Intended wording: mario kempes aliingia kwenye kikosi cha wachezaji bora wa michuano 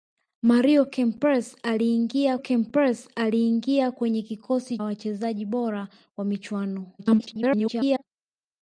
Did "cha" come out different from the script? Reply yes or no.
yes